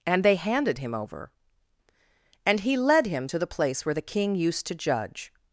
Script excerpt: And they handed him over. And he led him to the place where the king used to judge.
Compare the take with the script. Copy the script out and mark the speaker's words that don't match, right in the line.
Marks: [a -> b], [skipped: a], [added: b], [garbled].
And they handed him over. And he led him to the place where the king used to judge.